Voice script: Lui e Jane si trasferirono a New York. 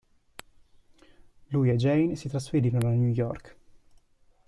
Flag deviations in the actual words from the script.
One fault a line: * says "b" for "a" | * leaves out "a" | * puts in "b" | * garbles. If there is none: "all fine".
all fine